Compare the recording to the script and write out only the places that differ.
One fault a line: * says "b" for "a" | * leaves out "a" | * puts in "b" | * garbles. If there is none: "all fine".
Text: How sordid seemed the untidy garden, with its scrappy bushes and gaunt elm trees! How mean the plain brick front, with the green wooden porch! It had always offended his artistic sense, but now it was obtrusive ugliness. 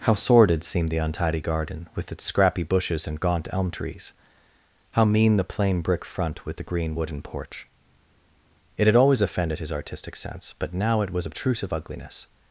all fine